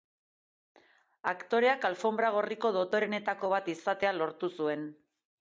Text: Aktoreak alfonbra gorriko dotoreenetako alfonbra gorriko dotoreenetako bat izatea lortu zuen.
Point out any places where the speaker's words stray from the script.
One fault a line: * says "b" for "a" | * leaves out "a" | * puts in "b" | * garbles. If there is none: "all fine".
* leaves out "alfonbra gorriko dotoreenetako"